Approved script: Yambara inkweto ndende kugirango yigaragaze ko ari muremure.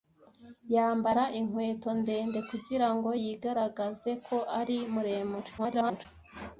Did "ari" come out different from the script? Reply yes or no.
no